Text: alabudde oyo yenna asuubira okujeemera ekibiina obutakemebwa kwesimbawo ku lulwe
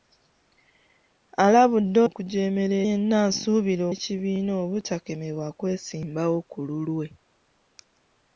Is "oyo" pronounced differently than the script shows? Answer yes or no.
yes